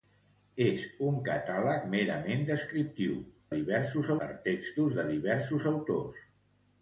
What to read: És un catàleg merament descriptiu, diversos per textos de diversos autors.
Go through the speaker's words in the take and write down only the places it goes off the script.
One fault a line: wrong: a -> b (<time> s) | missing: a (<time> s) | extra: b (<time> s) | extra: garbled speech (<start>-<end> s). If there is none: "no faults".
no faults